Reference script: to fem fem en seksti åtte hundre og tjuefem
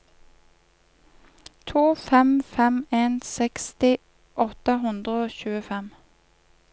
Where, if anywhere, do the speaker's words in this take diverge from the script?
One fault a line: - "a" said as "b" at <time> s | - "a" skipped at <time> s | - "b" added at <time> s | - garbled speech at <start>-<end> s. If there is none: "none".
none